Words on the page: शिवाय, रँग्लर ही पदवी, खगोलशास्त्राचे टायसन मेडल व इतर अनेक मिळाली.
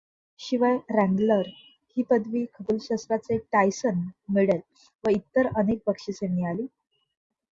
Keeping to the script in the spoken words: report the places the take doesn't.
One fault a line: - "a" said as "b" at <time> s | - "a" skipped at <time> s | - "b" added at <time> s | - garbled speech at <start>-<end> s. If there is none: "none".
- "बक्षिसे" added at 5.9 s